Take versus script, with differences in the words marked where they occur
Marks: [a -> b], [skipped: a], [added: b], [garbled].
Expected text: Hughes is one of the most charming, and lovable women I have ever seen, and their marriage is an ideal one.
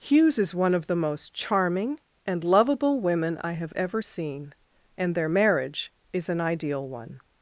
Hughes is one of the most charming, and lovable women I have ever seen, and their marriage is an ideal one.